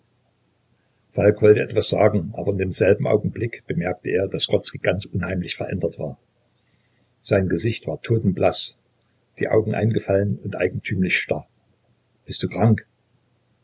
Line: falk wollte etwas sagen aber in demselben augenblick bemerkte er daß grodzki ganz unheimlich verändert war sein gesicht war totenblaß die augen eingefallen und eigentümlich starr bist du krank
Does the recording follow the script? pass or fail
pass